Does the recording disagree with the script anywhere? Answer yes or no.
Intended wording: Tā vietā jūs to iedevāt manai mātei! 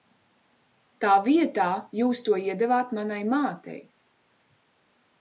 no